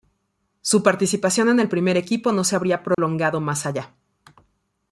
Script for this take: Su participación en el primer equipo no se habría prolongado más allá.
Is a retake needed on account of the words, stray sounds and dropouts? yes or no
yes